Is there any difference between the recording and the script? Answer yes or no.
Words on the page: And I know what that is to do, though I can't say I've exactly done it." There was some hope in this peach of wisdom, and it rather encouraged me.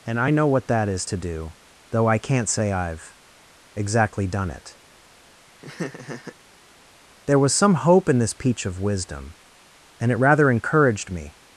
no